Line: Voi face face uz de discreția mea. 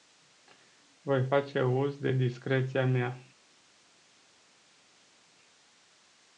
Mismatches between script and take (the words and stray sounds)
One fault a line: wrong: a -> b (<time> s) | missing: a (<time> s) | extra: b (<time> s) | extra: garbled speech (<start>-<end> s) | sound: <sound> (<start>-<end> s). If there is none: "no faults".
missing: face (1.6 s)